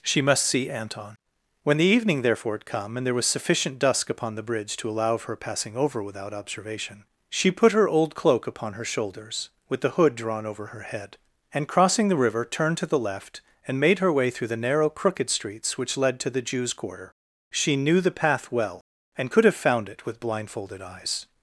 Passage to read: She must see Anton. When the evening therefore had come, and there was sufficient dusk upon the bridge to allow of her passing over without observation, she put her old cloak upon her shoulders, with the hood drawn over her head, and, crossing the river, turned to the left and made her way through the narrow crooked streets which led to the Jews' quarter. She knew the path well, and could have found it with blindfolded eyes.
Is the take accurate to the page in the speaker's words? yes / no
yes